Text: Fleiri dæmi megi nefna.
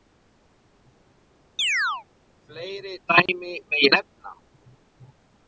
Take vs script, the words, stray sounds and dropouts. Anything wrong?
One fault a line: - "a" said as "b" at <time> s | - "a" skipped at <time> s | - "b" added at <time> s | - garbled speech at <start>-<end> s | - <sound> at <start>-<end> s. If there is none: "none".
- chirp at 1.6-2.1 s
- dropout at 3.3-3.3 s